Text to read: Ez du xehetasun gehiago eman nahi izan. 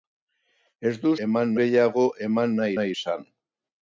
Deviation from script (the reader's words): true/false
true